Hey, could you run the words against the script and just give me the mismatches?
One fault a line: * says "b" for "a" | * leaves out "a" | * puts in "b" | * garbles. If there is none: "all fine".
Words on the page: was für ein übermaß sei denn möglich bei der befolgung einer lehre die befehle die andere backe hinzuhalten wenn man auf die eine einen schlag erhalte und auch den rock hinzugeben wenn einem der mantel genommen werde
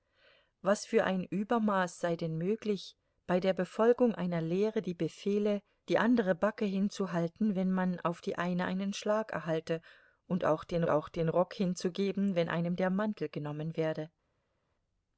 * puts in "auch den"